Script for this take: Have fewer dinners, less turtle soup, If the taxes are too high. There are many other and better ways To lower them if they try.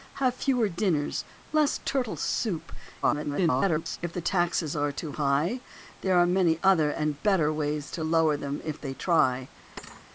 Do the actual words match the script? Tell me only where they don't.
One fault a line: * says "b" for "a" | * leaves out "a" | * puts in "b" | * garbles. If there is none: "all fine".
* garbles